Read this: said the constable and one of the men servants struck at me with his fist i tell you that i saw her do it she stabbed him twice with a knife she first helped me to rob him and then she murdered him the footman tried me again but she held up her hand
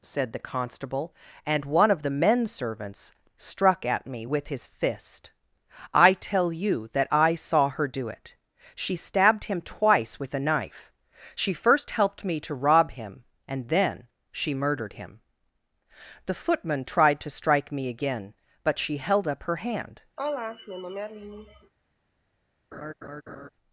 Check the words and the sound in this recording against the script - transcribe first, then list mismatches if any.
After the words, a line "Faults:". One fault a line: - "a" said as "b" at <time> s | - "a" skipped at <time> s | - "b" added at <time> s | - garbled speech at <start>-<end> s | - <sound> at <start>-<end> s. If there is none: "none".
said the constable and one of the men servants struck at me with his fist i tell you that i saw her do it she stabbed him twice with a knife she first helped me to rob him and then she murdered him the footman tried to strike me again but she held up her hand
Faults:
- "to strike" added at 17.2 s
- sigh at 20.2-21.7 s
- laugh at 22.7-23.5 s